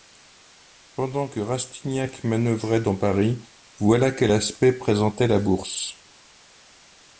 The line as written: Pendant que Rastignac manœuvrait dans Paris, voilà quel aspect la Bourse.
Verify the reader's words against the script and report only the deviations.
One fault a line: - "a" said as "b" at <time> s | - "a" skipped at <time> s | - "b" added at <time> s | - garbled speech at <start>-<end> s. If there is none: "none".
- "présentait" added at 4.7 s